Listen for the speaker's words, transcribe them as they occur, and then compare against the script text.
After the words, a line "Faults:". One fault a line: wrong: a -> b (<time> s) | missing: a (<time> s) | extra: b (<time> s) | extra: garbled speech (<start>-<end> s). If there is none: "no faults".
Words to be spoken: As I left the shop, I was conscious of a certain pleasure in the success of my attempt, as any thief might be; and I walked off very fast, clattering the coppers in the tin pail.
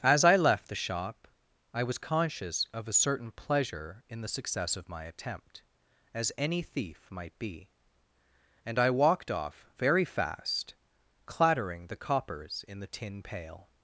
As I left the shop, I was conscious of a certain pleasure in the success of my attempt, as any thief might be; and I walked off very fast, clattering the coppers in the tin pail.
Faults:
no faults